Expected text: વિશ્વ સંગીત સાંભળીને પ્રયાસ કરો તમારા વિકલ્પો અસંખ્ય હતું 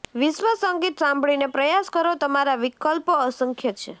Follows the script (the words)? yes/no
no